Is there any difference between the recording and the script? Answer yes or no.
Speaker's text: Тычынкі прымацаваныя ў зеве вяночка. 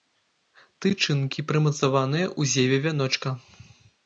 no